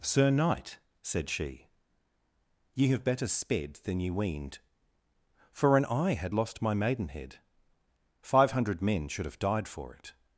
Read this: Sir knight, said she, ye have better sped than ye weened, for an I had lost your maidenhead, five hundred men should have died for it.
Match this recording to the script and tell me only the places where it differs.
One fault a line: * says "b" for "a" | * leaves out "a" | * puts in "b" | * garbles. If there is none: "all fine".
* says "my" for "your"